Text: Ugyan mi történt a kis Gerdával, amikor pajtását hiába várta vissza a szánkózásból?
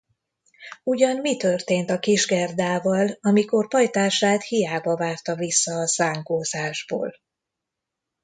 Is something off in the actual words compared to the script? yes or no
no